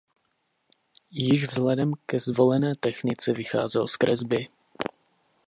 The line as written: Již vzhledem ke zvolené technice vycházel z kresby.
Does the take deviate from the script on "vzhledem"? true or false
false